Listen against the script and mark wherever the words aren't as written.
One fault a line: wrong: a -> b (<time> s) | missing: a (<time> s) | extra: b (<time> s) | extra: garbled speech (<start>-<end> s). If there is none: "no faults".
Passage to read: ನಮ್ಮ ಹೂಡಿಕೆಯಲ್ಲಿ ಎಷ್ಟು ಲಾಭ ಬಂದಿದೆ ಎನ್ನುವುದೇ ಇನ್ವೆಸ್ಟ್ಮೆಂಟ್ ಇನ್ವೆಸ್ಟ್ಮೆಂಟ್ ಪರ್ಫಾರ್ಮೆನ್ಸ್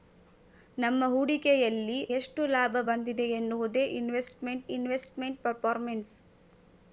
no faults